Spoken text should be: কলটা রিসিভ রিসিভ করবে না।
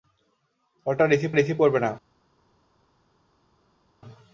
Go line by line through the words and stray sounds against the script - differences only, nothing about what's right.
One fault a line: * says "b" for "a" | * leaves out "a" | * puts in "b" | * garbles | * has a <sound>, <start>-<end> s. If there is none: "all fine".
all fine